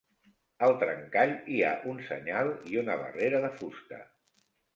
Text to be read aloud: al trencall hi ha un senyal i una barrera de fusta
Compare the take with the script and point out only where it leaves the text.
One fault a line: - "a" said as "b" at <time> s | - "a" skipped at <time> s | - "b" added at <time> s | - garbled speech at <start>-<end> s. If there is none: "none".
none